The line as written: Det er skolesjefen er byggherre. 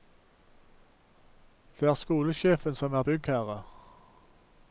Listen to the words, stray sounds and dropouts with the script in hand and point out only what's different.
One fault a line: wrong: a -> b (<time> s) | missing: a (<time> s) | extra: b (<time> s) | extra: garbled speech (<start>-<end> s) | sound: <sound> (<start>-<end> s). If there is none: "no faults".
extra: som (2.8 s)